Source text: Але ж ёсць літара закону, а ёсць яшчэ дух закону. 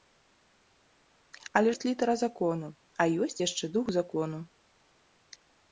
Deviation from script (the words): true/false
true